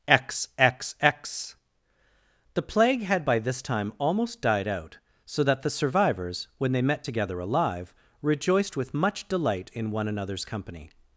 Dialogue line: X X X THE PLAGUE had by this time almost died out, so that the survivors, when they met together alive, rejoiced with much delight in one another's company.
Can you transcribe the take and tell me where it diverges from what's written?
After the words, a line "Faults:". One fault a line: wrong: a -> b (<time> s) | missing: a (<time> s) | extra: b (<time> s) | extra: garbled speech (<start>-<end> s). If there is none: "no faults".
X X X THE PLAGUE had by this time almost died out, so that the survivors, when they met together alive, rejoiced with much delight in one another's company.
Faults:
no faults